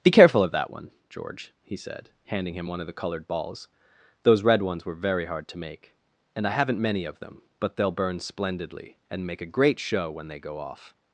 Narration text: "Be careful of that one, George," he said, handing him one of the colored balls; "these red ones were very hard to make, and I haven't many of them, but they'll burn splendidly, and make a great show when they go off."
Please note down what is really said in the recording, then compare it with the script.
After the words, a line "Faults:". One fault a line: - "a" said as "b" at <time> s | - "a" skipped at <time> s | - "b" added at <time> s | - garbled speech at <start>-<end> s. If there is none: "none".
"Be careful of that one, George," he said, handing him one of the colored balls; "those red ones were very hard to make, and I haven't many of them, but they'll burn splendidly, and make a great show when they go off."
Faults:
- "these" said as "those" at 4.2 s